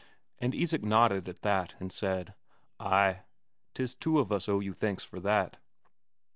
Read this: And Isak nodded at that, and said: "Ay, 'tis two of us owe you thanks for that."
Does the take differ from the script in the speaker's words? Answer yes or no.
no